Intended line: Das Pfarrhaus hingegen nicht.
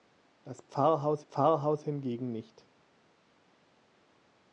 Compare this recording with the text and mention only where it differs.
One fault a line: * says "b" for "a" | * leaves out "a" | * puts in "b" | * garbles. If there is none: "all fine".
* puts in "Pfarrhaus"